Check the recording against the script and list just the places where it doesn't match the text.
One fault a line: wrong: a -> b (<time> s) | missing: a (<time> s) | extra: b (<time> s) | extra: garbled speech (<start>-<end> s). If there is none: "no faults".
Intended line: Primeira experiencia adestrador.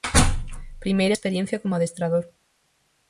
extra: como (1.6 s)